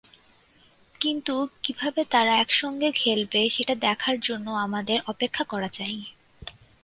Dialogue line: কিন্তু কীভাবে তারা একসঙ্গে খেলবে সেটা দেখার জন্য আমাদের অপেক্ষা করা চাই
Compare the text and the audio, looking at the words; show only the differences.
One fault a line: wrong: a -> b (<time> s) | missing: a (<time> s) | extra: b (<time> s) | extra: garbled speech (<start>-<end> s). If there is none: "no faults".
no faults